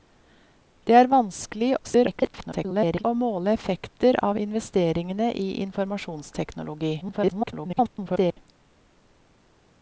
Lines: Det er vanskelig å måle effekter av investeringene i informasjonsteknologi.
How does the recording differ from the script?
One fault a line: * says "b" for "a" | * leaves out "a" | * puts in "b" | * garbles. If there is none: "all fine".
* garbles
* garbles